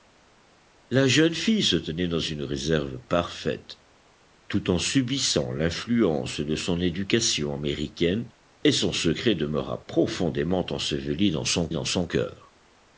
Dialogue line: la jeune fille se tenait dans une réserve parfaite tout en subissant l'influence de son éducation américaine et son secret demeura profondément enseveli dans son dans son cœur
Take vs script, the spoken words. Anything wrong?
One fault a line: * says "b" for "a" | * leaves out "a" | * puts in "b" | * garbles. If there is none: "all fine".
all fine